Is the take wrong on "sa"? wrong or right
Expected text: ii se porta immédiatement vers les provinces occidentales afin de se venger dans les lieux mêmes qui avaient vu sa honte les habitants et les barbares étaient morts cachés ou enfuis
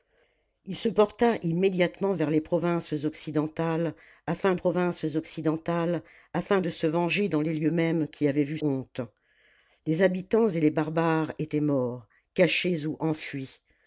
wrong